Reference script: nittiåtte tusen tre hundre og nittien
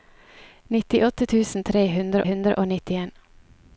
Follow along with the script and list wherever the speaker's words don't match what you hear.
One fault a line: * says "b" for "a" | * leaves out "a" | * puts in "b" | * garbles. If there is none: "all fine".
* puts in "hundre"